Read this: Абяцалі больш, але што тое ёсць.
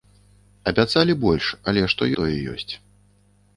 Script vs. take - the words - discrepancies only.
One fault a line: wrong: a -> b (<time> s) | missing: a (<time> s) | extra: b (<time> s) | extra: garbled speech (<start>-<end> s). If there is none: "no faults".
no faults